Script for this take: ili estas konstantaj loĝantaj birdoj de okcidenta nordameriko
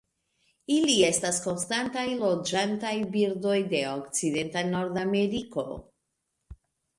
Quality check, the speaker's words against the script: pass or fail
pass